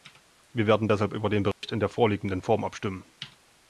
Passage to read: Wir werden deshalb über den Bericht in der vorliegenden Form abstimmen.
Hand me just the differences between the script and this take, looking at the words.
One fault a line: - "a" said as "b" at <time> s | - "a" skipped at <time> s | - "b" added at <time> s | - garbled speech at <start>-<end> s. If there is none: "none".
none